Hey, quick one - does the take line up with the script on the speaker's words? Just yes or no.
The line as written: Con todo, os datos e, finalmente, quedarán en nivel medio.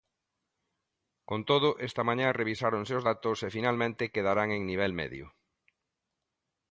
no